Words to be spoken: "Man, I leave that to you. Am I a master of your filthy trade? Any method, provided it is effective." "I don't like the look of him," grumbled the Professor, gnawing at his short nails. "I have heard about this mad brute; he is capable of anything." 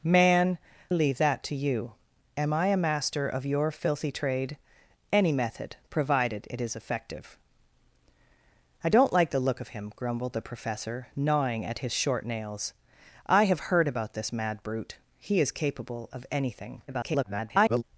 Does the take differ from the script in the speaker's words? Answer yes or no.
yes